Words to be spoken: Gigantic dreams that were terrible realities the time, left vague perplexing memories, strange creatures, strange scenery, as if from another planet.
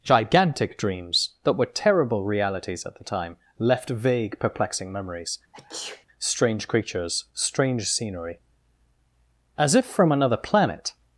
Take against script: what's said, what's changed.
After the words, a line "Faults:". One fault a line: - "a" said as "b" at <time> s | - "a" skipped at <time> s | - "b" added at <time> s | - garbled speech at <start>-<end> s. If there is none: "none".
Gigantic dreams that were terrible realities at the time, left vague perplexing memories, strange creatures, strange scenery, as if from another planet.
Faults:
- "at" added at 2.9 s